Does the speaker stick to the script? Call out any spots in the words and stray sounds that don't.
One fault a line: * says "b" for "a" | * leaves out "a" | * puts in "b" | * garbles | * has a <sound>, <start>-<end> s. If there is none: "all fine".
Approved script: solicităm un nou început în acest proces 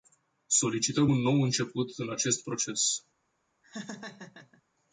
* has a laugh, 3.6-4.6 s